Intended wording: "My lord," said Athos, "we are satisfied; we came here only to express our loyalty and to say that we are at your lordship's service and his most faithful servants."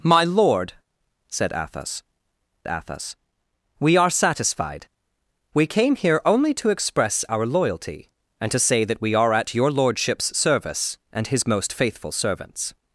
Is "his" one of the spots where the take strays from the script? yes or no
no